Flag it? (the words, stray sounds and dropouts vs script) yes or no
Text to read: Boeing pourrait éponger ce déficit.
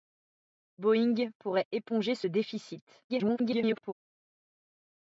yes